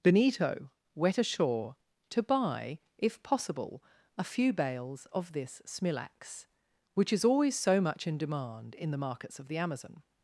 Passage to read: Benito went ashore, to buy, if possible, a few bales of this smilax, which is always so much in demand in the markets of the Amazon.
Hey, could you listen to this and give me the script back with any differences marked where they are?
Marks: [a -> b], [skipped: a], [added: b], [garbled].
Benito [went -> wet] ashore, to buy, if possible, a few bales of this smilax, which is always so much in demand in the markets of the Amazon.